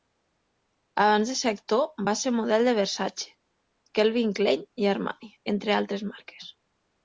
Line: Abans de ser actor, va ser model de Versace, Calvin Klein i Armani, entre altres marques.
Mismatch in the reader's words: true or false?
false